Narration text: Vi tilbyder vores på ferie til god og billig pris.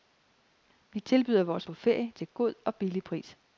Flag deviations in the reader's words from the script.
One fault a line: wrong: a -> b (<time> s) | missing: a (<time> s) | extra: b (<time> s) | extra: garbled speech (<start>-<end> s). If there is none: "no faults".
no faults